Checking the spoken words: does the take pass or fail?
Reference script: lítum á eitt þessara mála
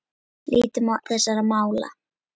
fail